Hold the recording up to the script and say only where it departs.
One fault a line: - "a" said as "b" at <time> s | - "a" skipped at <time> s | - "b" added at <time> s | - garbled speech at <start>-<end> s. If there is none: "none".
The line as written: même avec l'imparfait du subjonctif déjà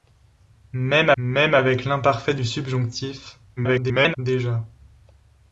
- "même" added at 1.2 s
- garbled speech at 3.6-4.2 s